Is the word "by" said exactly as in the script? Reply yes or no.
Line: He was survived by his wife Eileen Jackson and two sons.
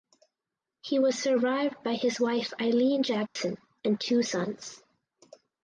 yes